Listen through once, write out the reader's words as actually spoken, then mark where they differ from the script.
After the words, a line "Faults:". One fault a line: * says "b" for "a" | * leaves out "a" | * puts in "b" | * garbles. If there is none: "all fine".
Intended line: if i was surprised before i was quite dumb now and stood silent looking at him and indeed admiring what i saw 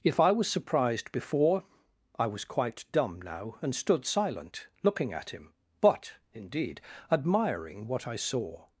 if i was surprised before i was quite dumb now and stood silent looking at him but indeed admiring what i saw
Faults:
* says "but" for "and"